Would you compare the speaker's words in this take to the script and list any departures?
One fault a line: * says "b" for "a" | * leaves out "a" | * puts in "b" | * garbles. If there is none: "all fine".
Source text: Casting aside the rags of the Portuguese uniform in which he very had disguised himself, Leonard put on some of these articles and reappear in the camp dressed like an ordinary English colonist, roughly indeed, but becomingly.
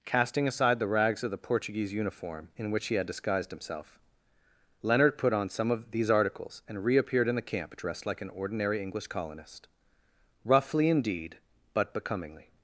* leaves out "very"
* says "reappeared" for "reappear"